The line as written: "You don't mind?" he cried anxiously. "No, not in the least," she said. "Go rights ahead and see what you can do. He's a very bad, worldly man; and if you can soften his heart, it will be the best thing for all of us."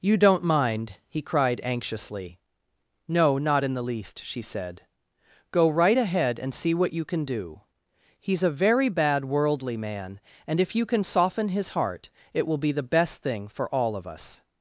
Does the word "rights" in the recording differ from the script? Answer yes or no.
yes